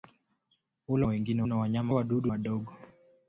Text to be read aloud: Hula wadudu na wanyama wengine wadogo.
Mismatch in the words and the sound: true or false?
true